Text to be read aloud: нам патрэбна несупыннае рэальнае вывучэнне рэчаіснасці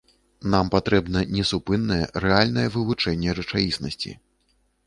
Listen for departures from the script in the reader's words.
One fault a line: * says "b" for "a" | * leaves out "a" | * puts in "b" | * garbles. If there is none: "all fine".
all fine